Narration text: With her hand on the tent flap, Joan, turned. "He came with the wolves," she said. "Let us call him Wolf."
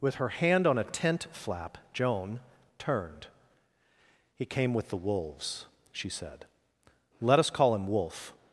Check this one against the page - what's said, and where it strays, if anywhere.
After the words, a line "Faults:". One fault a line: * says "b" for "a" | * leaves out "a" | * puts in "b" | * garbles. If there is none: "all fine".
With her hand on a tent flap, Joan, turned. "He came with the wolves," she said. "Let us call him Wolf."
Faults:
* says "a" for "the"